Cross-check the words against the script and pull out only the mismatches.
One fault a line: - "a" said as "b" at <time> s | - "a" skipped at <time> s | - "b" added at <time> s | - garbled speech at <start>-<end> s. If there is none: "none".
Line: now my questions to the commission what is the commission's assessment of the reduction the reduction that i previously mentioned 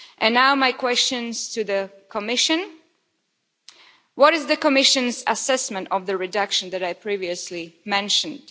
- "the reduction" skipped at 6.7 s